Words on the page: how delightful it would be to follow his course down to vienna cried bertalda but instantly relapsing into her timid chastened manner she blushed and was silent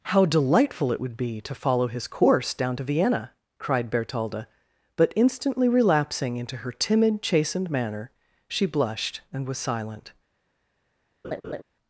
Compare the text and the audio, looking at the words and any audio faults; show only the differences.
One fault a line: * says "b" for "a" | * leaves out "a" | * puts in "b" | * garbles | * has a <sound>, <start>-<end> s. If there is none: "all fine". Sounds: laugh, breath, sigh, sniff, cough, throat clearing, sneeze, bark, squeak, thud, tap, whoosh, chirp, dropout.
* has a laugh, 11.2-11.6 s